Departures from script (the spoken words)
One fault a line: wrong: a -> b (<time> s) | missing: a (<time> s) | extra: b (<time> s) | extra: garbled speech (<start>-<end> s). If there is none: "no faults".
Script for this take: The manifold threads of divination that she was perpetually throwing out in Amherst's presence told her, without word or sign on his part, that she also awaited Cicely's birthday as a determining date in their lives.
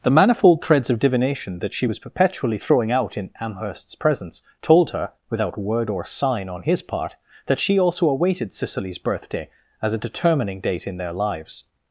no faults